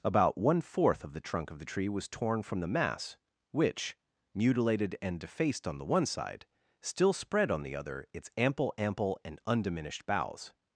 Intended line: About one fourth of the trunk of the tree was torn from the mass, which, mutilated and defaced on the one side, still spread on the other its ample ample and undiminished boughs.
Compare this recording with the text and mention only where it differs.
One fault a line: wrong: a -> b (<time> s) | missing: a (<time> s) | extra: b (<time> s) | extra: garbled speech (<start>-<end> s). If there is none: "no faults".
no faults